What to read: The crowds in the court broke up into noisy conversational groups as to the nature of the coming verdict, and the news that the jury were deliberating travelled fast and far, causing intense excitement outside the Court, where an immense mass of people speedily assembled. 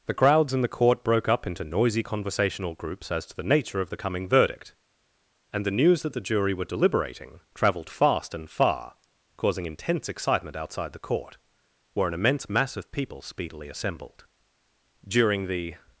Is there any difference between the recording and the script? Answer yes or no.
yes